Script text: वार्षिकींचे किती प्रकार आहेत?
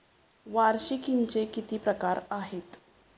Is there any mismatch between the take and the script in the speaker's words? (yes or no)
no